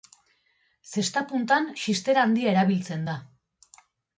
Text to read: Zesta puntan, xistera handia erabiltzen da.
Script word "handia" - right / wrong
right